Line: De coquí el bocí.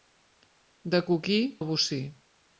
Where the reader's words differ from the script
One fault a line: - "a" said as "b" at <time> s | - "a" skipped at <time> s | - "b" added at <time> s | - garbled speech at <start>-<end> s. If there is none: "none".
none